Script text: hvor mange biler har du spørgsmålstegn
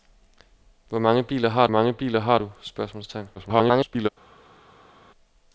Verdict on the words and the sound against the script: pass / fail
fail